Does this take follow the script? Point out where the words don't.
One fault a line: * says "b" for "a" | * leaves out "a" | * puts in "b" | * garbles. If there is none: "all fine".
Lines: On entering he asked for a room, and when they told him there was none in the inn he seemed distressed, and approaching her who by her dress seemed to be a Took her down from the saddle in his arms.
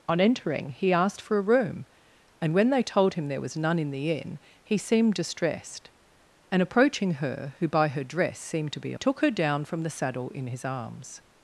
all fine